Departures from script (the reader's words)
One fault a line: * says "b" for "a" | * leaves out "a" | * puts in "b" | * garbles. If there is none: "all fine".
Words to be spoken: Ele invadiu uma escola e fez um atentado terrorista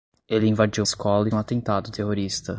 * leaves out "uma"
* leaves out "fez"